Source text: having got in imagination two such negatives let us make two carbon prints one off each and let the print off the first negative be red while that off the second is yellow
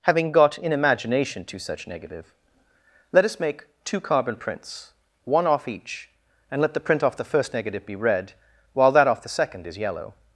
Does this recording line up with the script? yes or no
no